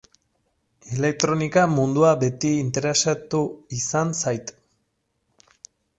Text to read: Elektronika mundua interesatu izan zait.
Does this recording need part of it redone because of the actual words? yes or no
yes